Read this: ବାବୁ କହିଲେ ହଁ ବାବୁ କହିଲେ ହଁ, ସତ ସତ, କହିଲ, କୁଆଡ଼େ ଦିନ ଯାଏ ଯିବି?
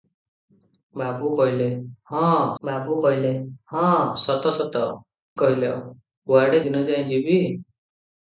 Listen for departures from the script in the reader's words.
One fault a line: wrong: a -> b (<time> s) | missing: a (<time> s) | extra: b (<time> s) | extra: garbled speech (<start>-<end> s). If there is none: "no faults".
no faults